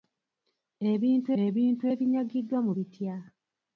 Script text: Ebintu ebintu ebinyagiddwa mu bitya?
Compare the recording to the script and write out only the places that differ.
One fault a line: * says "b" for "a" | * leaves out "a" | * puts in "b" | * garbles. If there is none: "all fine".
all fine